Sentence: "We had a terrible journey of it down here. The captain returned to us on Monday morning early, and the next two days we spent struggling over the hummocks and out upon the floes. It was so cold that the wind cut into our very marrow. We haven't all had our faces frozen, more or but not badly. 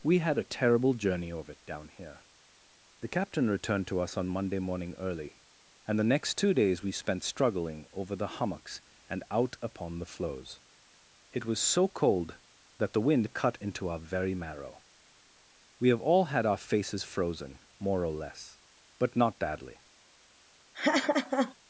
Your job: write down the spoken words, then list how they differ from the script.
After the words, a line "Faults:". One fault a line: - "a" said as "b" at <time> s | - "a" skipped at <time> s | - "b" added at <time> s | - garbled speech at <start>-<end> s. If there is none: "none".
"We had a terrible journey of it down here. The captain returned to us on Monday morning early, and the next two days we spent struggling over the hummocks and out upon the floes. It was so cold that the wind cut into our very marrow. We have all had our faces frozen, more or less, but not badly.
Faults:
- "haven't" said as "have" at 15.9 s
- "less" added at 18.1 s